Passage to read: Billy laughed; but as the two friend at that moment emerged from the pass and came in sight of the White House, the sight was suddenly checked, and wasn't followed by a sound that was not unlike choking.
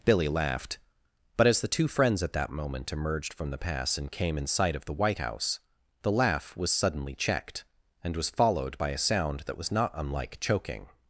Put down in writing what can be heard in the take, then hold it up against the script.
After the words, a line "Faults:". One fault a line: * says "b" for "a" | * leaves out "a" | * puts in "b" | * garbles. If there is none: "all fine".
Billy laughed; but as the two friends at that moment emerged from the pass and came in sight of the White House, the laugh was suddenly checked, and was followed by a sound that was not unlike choking.
Faults:
* says "friends" for "friend"
* says "laugh" for "sight"
* says "was" for "wasn't"